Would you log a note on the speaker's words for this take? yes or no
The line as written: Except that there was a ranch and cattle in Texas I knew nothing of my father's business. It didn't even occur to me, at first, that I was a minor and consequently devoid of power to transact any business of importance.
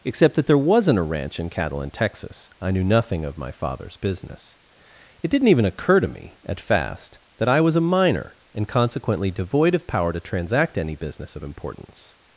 yes